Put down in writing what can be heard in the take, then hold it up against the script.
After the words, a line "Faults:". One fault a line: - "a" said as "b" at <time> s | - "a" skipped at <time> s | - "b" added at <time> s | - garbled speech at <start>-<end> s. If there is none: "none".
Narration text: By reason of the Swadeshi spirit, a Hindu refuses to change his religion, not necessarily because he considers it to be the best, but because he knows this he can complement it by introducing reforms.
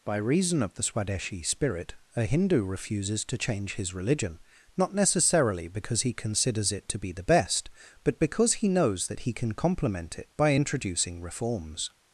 By reason of the Swadeshi spirit, a Hindu refuses to change his religion, not necessarily because he considers it to be the best, but because he knows that he can complement it by introducing reforms.
Faults:
- "this" said as "that" at 9.1 s